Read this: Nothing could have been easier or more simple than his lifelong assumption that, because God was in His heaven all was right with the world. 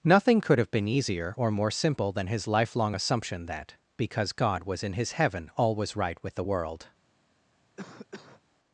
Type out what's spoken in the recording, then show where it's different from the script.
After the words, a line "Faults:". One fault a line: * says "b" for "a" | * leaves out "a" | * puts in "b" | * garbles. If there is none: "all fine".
Nothing could have been easier or more simple than his lifelong assumption that, because God was in His heaven all was right with the world.
Faults:
all fine